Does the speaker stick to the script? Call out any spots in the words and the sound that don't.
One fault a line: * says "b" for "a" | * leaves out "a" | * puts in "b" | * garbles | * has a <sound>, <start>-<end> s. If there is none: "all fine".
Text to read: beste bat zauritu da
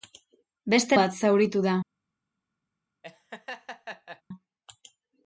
* has a laugh, 3.0-4.2 s